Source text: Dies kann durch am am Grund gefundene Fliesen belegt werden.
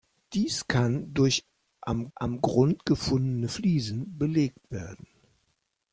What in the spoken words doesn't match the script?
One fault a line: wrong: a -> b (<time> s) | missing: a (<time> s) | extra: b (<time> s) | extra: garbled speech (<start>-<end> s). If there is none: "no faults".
no faults